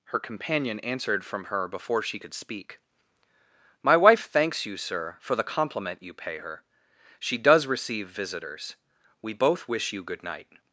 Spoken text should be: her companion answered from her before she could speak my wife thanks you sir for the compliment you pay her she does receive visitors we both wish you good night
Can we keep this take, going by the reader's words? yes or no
yes